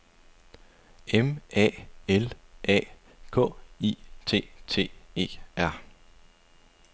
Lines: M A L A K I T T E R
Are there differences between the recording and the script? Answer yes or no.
no